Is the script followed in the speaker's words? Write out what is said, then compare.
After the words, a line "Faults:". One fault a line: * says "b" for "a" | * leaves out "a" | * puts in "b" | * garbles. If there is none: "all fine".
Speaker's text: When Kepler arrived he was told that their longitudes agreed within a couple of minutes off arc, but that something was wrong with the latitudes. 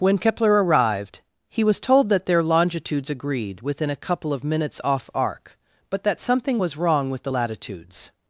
When Kepler arrived he was told that their longitudes agreed within a couple of minutes off arc, but that something was wrong with the latitudes.
Faults:
all fine